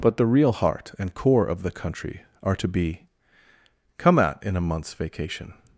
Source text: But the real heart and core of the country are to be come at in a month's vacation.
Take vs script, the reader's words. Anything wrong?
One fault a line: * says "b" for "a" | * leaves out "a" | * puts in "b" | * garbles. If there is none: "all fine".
all fine